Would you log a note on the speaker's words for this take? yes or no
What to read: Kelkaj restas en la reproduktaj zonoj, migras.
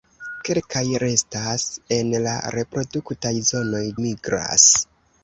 no